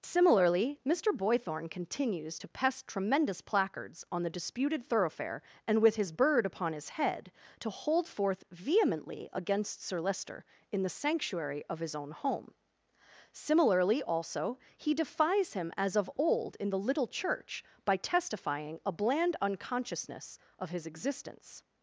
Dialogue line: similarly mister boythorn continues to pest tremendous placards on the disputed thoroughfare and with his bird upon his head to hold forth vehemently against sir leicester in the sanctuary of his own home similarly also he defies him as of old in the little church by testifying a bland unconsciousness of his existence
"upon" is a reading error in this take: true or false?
false